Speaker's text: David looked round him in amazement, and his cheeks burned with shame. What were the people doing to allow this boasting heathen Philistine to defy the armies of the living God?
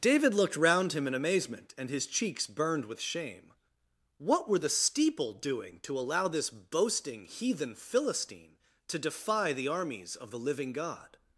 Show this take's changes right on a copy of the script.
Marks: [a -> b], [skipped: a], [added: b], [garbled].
David looked round him in amazement, and his cheeks burned with shame. What were the [people -> steeple] doing to allow this boasting heathen Philistine to defy the armies of the living God?